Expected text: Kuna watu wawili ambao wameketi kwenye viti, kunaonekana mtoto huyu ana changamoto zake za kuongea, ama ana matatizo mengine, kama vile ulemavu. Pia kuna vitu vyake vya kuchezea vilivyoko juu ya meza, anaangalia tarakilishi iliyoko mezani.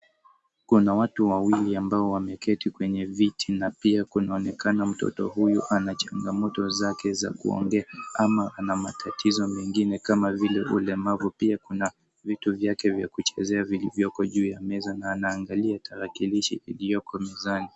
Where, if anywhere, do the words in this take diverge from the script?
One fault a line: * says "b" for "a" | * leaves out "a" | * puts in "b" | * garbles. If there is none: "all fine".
* puts in "na pia"
* puts in "na"